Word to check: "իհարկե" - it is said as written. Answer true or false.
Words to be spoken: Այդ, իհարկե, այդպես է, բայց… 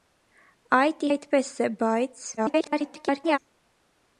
false